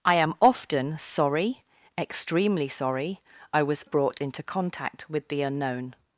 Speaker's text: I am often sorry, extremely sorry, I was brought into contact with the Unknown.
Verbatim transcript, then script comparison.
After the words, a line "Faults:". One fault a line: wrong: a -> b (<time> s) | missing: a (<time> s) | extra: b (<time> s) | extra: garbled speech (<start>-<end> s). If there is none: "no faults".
I am often sorry, extremely sorry, I was brought into contact with the Unknown.
Faults:
no faults